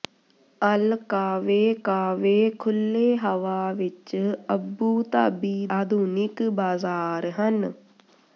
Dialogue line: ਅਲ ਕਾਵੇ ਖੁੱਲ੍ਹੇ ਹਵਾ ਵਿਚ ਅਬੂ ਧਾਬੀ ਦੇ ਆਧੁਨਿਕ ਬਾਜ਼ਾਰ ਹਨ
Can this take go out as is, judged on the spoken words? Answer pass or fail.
fail